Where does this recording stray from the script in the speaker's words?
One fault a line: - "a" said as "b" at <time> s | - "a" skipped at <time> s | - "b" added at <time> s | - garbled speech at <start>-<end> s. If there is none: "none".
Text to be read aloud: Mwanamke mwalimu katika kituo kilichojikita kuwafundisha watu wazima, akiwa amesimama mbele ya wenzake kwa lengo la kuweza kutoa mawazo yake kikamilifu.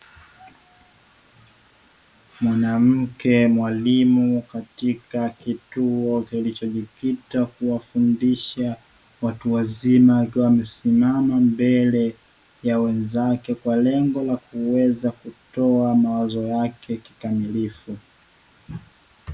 none